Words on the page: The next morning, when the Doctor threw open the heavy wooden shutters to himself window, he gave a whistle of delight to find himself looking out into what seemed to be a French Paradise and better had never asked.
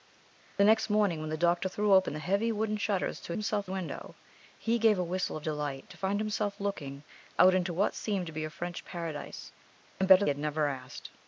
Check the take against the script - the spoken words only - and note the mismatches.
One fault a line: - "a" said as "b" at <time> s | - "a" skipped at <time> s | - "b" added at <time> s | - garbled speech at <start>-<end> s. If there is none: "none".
none